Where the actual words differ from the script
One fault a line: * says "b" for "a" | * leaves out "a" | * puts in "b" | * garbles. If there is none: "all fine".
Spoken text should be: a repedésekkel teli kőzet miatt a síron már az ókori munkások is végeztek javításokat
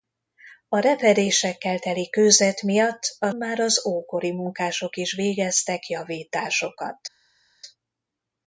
* leaves out "síron"